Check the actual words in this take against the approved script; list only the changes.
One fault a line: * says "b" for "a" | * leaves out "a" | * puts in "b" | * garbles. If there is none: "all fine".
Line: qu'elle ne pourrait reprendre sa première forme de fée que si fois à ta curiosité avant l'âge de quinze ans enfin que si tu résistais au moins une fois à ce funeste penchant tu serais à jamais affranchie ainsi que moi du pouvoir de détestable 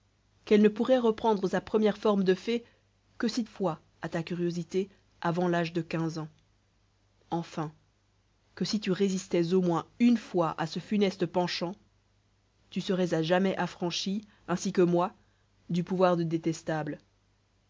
all fine